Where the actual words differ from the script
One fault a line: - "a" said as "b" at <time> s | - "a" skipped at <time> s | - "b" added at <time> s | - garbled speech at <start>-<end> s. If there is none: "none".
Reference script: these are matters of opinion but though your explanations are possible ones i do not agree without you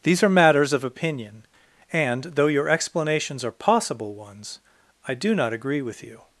- "but" said as "and" at 1.9 s
- "without" said as "with" at 5.8 s